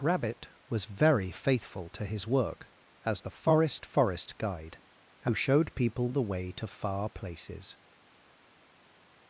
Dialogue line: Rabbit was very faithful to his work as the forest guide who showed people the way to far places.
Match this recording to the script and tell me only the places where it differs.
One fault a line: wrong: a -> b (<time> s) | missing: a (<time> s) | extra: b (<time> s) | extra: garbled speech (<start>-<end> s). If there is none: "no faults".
extra: forest (3.9 s)